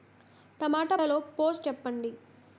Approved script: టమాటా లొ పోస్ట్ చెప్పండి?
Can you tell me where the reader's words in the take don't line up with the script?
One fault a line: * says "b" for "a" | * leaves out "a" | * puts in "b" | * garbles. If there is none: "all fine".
all fine